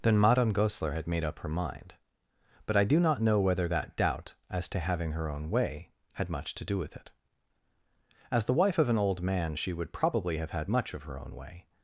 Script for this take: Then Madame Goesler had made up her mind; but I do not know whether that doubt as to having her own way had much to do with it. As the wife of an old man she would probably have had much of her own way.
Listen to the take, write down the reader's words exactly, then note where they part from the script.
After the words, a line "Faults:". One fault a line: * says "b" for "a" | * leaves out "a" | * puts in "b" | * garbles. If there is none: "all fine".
Then Madame Goesler had made up her mind; but I do not know whether that doubt as to having her own way had much to do with it. As the wife of an old man she would probably have had much of her own way.
Faults:
all fine